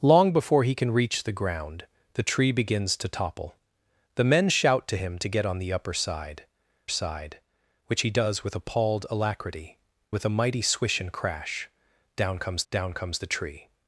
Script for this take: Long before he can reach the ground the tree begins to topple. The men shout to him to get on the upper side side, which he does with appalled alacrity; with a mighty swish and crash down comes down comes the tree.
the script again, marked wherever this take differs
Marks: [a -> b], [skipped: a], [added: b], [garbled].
Long before he can reach the ground the tree begins to topple. The men shout to him to get on the upper side side, which he does with appalled alacrity; with a mighty swish and crash down comes down comes the tree.